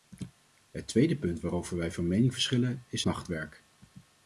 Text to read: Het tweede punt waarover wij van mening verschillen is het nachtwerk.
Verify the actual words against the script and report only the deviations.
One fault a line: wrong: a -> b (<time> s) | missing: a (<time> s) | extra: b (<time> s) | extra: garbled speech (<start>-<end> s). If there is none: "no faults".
missing: het (3.0 s)